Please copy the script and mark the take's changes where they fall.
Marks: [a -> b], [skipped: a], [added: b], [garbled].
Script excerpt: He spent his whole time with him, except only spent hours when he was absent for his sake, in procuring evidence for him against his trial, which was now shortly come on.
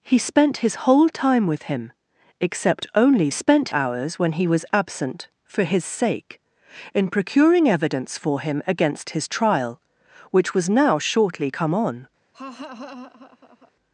He spent his whole time with him, except only spent hours when he was absent for his sake, in procuring evidence for him against his trial, which was now shortly come on.